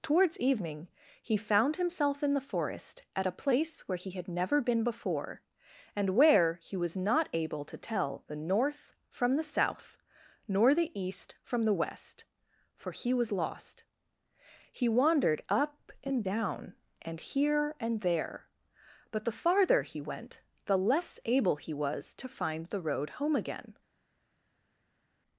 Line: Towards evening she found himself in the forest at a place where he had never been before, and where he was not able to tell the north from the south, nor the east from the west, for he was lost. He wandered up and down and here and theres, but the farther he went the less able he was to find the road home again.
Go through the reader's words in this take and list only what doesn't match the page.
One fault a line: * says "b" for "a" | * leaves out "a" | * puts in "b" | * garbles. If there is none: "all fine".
* says "he" for "she"
* says "there" for "theres"